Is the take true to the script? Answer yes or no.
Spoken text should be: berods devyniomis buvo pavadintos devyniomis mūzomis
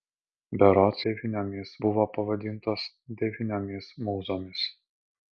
yes